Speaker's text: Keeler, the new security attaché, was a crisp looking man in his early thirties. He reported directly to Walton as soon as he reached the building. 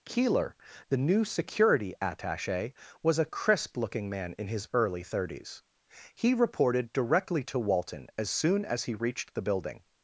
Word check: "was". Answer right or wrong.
right